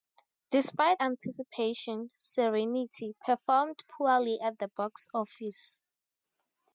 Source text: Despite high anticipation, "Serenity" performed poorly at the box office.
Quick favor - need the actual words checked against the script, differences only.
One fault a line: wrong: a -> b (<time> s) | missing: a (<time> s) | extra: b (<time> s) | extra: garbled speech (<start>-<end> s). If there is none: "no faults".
missing: high (1.0 s)